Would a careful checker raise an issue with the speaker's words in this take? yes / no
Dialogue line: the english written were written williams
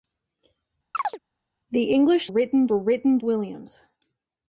no